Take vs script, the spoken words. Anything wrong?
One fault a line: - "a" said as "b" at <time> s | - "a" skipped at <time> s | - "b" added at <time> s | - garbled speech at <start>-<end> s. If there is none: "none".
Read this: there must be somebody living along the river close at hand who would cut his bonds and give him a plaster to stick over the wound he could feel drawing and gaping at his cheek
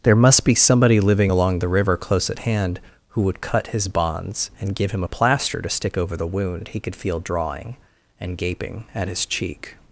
none